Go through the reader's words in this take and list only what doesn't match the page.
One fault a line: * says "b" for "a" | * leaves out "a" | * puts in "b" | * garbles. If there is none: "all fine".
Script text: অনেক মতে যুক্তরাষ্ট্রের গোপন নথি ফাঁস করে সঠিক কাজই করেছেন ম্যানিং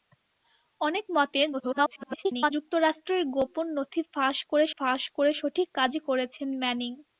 * garbles
* puts in "ফাঁস করে"